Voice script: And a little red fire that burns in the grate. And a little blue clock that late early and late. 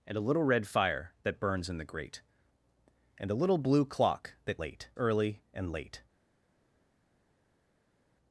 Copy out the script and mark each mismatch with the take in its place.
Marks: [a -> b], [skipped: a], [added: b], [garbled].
And a little red fire that burns in the grate. And a little blue clock that late early and late.